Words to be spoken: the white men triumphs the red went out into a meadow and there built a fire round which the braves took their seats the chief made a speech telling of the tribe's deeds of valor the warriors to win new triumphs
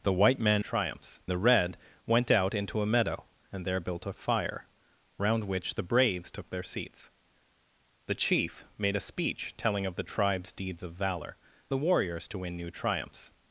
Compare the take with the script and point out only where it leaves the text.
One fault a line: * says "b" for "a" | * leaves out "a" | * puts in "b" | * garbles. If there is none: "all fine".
all fine